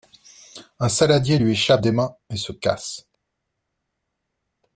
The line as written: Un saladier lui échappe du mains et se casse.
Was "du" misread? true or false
true